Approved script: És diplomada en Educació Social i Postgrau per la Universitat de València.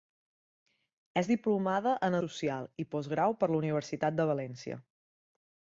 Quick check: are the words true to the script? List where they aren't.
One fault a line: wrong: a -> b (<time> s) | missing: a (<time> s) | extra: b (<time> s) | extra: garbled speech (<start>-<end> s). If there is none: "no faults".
missing: Educació (2.2 s)